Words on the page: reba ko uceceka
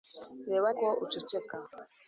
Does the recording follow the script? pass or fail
pass